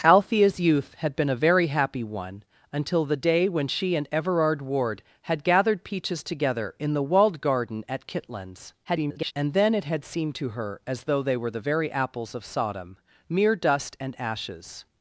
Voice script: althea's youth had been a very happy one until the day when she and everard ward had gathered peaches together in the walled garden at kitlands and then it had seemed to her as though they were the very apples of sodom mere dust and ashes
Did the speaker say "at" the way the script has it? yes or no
yes